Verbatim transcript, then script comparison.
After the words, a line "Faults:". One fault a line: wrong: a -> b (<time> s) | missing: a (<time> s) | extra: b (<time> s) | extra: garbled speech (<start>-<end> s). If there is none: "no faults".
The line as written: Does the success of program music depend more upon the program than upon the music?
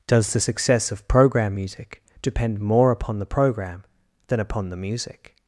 Does the success of program music depend more upon the program than upon the music?
Faults:
no faults